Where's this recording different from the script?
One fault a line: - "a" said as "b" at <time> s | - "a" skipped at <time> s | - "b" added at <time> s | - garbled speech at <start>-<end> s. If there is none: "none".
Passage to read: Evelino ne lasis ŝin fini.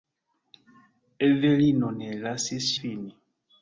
- "ŝin" skipped at 2.7 s